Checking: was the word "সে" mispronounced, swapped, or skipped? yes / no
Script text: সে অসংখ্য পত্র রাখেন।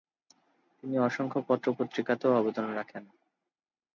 yes